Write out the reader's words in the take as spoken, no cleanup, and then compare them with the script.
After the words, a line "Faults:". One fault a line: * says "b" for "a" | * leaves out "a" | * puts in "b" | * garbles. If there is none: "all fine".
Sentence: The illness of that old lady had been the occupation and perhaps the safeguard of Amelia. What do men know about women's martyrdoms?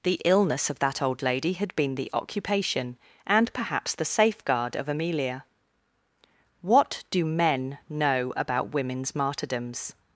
The illness of that old lady had been the occupation and perhaps the safeguard of Amelia. What do men know about women's martyrdoms?
Faults:
all fine